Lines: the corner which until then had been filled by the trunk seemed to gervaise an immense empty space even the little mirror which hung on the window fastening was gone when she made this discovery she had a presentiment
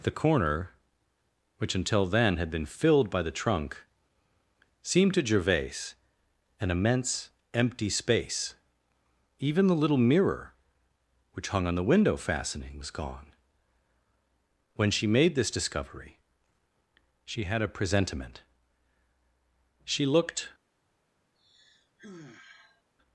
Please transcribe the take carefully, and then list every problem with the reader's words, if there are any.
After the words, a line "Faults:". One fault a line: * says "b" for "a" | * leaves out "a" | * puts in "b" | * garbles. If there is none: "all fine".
the corner which until then had been filled by the trunk seemed to gervaise an immense empty space even the little mirror which hung on the window fastening was gone when she made this discovery she had a presentiment she looked
Faults:
* puts in "she looked"